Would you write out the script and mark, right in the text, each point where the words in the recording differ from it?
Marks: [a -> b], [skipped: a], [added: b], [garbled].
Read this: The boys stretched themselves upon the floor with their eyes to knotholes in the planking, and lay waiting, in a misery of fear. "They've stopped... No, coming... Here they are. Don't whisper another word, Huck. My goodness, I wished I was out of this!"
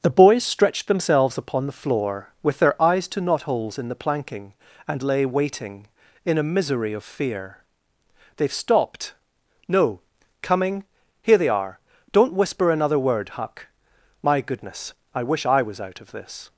The boys stretched themselves upon the floor with their eyes to knotholes in the planking, and lay waiting, in a misery of fear. "They've stopped... No, coming... Here they are. Don't whisper another word, Huck. My goodness, I [wished -> wish] I was out of this!"